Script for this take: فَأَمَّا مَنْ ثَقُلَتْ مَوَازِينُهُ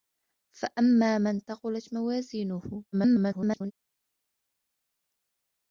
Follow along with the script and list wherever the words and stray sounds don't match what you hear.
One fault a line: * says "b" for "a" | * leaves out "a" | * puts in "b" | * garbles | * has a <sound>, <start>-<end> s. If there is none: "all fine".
* garbles